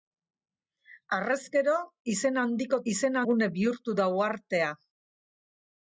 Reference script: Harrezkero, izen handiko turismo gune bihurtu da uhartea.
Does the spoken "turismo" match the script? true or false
false